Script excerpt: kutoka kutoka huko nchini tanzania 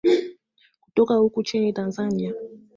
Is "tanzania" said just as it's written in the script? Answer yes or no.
yes